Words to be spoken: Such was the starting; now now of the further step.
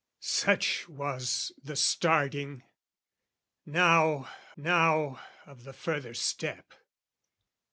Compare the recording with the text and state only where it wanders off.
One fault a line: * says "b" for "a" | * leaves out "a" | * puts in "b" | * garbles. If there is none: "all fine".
all fine